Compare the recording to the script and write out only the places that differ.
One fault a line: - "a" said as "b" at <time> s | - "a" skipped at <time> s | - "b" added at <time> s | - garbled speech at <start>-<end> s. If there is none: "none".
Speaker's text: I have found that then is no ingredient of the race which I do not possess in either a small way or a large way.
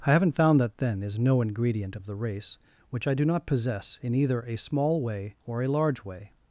- "have" said as "haven't" at 0.1 s